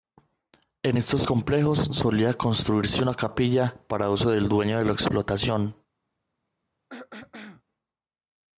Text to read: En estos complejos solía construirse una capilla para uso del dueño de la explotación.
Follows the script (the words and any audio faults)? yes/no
no